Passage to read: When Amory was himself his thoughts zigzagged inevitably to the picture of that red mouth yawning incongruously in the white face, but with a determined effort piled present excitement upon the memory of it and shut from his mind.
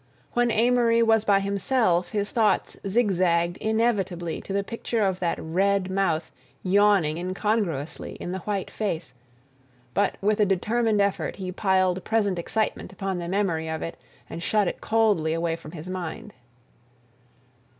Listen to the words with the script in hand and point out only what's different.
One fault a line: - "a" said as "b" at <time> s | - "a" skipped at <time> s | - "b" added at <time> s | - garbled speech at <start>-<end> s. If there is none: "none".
- "by" added at 1.2 s
- "he" added at 11.4 s
- "it coldly away" added at 14.7 s